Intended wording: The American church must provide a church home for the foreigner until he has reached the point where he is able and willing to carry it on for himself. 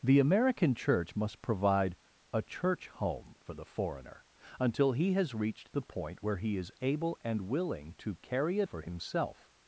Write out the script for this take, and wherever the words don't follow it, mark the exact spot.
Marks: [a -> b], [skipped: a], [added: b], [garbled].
The American church must provide a church home for the foreigner until he has reached the point where he is able and willing to carry it [skipped: on] for himself.